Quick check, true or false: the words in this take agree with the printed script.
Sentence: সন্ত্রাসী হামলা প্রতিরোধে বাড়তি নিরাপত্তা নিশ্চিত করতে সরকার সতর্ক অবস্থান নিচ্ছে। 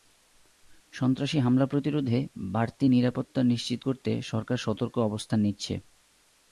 true